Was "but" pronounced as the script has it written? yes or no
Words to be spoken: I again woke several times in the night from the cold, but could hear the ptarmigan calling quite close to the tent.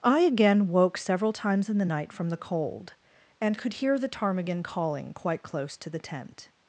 no